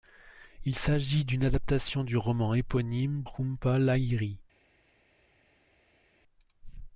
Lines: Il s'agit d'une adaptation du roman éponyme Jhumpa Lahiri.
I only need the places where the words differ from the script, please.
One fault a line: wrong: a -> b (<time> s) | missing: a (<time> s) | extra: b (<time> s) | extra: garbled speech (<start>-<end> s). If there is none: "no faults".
no faults